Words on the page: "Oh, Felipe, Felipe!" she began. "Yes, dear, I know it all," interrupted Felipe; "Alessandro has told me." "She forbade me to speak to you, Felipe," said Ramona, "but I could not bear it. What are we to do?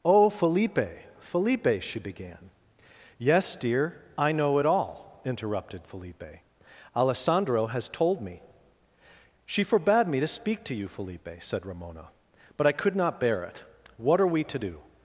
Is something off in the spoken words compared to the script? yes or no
no